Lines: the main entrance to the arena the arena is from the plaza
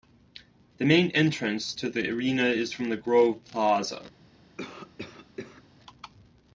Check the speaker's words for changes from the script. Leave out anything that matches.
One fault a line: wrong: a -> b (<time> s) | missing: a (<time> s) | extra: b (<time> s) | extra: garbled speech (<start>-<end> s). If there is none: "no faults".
missing: the arena (2.4 s)
extra: grove (3.0 s)